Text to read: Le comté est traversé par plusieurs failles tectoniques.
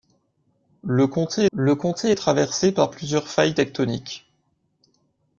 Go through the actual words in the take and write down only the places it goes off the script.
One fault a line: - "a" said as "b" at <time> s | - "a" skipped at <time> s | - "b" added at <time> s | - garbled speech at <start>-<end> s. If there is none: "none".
- "le comté" added at 1.5 s